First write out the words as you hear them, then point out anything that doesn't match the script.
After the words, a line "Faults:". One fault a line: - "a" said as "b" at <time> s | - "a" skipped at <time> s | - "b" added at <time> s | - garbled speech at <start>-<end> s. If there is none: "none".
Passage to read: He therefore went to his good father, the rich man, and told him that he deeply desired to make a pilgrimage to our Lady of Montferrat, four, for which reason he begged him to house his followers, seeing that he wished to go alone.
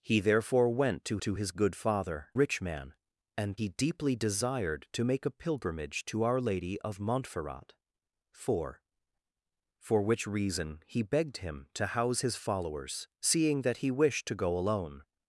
He therefore went to to his good father, rich man, and he deeply desired to make a pilgrimage to our Lady of Montferrat, four, for which reason he begged him to house his followers, seeing that he wished to go alone.
Faults:
- "to" added at 1.2 s
- "the" skipped at 2.3 s
- "told him that" skipped at 3.6 s